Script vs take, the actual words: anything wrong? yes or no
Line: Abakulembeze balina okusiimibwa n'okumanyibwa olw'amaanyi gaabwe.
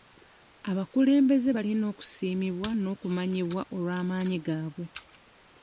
no